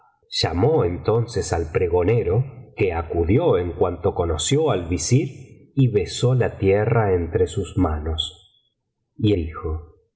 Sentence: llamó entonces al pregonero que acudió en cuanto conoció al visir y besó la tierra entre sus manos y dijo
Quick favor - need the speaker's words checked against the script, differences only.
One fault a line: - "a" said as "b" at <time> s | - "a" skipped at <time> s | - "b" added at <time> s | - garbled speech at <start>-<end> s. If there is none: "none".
none